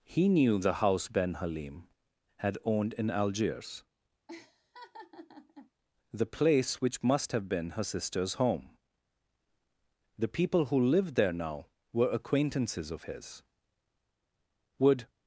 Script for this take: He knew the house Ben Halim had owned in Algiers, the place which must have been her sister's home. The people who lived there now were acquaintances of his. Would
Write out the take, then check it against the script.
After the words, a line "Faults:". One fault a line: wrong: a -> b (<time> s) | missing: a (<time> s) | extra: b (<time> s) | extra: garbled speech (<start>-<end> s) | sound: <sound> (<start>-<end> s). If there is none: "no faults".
He knew the house Ben Halim had owned in Algiers, the place which must have been her sister's home. The people who lived there now were acquaintances of his. Would
Faults:
sound: laugh (4.3-5.7 s)